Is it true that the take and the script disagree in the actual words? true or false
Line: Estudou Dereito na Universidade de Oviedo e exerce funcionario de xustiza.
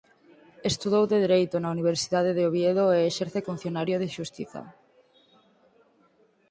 false